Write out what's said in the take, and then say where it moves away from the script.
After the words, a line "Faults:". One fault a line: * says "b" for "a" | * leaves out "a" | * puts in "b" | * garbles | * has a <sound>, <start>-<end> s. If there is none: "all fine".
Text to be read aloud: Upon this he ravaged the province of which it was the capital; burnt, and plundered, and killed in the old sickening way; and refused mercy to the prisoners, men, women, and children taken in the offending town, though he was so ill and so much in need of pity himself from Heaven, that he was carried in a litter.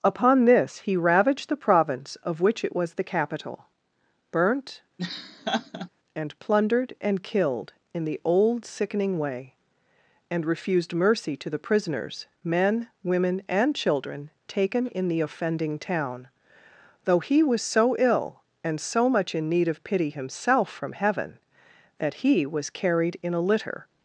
Upon this he ravaged the province of which it was the capital; burnt, and plundered, and killed in the old sickening way; and refused mercy to the prisoners, men, women, and children taken in the offending town, though he was so ill and so much in need of pity himself from Heaven, that he was carried in a litter.
Faults:
* has a laugh, 5.0-5.9 s